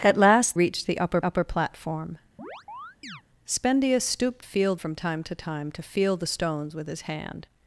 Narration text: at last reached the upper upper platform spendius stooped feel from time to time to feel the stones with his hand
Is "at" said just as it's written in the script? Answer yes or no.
yes